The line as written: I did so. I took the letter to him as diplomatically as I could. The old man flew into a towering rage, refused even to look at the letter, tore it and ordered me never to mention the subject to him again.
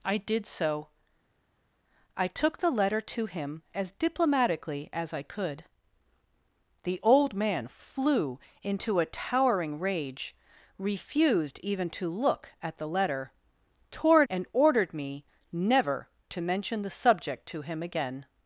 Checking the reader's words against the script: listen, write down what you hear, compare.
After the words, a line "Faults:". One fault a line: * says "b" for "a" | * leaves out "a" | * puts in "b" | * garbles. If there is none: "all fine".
I did so. I took the letter to him as diplomatically as I could. The old man flew into a towering rage, refused even to look at the letter, tore it and ordered me never to mention the subject to him again.
Faults:
all fine